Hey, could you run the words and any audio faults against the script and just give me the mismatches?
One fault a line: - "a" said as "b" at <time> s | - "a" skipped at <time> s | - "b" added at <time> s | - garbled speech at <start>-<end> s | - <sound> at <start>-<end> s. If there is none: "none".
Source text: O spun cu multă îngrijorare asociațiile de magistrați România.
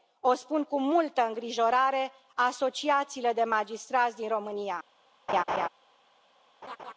- "din" added at 4.2 s
- laugh at 5.3-5.7 s
- laugh at 6.6-6.9 s